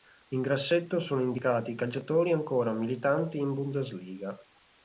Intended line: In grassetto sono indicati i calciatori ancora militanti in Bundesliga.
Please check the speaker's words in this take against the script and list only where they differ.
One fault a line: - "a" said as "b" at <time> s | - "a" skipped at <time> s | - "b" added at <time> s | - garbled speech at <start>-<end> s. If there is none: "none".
none